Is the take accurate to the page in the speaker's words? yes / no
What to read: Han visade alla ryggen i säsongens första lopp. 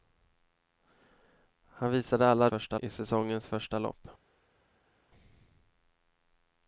no